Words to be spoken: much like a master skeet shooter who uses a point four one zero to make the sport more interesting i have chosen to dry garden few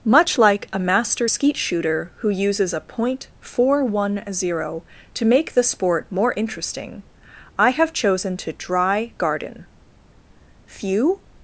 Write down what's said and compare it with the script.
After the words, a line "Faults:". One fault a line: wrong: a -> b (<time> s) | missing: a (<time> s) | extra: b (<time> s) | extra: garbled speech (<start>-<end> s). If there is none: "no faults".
much like a master skeet shooter who uses a point four one zero to make the sport more interesting i have chosen to dry garden few
Faults:
no faults